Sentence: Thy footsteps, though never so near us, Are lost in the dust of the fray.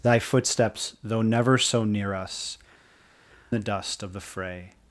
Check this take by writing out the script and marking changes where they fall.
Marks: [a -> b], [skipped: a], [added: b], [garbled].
Thy footsteps, though never so near us, [skipped: Are lost in] the dust of the fray.